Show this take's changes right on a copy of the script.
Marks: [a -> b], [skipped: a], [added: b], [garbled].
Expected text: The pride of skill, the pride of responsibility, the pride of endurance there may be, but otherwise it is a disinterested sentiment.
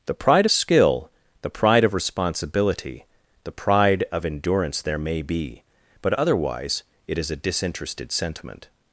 The pride [skipped: of] skill, the pride of responsibility, the pride of endurance there may be, but otherwise it is a disinterested sentiment.